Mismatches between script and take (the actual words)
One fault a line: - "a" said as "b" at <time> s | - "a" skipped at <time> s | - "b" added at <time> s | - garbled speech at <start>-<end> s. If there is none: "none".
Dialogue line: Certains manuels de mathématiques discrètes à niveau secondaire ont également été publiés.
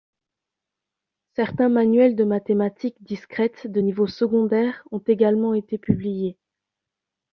- "à" said as "de" at 3.7 s